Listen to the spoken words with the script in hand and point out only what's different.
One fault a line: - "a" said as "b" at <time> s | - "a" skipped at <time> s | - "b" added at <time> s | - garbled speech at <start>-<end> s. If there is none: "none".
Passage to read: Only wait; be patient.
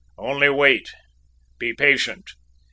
none